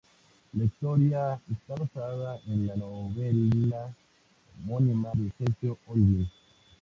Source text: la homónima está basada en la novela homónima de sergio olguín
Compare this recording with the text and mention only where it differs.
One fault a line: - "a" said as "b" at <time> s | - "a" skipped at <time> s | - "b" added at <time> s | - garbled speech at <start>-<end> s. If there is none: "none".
- "homónima" said as "historia" at 0.6 s